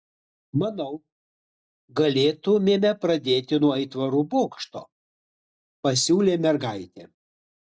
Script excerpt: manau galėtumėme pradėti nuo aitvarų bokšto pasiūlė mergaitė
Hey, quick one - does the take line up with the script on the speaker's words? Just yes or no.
yes